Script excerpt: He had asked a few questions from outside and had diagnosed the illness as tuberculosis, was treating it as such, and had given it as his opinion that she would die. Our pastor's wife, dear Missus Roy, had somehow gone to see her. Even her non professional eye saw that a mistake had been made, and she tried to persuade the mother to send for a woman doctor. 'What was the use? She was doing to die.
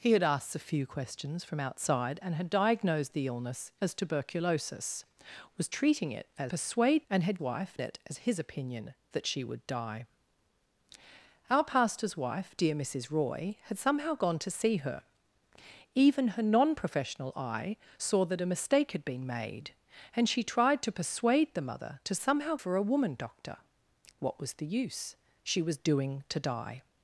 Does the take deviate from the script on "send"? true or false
true